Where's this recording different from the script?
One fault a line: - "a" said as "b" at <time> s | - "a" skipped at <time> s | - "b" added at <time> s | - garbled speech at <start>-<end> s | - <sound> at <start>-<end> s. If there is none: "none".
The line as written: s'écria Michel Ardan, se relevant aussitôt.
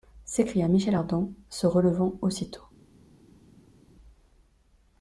none